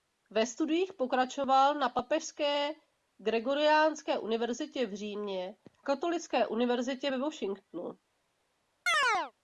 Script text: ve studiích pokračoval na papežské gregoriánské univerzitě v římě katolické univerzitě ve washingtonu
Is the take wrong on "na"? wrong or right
right